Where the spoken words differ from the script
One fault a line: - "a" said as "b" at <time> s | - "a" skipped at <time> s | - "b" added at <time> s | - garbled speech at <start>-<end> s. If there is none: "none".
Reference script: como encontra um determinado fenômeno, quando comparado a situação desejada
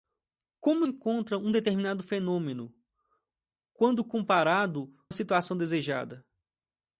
none